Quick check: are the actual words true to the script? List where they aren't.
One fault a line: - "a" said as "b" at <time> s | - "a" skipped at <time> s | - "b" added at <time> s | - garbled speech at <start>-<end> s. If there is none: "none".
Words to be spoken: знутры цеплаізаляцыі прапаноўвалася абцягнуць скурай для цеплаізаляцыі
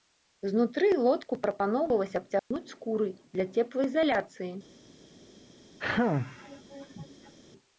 - "цеплаізаляцыі" said as "лодку" at 1.1 s